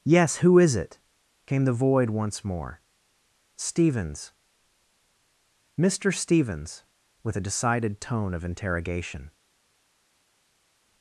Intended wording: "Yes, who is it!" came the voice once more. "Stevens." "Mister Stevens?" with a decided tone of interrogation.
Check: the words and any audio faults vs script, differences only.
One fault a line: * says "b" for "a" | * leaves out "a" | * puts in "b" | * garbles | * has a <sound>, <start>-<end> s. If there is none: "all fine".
* says "void" for "voice"